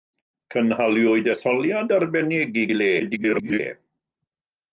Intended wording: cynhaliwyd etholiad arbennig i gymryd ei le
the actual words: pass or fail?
fail